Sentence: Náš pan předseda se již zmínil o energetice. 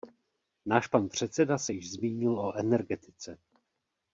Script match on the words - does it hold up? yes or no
yes